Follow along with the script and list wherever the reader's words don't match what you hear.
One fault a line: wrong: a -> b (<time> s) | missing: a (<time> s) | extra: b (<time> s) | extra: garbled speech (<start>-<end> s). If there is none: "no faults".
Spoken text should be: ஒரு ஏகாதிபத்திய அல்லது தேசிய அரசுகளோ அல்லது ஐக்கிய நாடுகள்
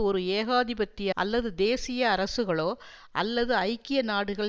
no faults